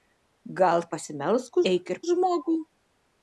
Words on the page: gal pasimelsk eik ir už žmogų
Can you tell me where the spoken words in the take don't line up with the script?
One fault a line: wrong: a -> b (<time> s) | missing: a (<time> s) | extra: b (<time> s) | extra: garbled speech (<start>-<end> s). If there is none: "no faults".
no faults